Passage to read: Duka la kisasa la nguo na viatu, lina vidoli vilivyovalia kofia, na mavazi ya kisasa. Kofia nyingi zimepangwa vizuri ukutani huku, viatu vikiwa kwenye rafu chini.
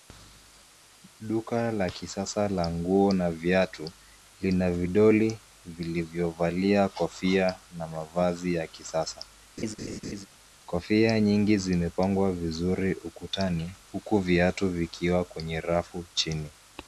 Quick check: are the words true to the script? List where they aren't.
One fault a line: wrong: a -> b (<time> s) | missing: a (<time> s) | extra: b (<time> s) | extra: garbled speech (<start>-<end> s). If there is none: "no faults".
no faults